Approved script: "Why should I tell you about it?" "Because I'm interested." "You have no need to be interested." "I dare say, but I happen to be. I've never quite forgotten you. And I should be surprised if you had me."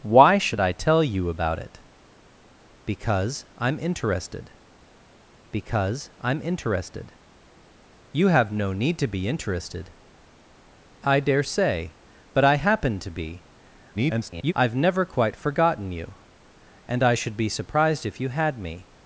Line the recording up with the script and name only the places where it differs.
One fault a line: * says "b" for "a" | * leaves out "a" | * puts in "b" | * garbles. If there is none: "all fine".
* puts in "because I'm interested"
* garbles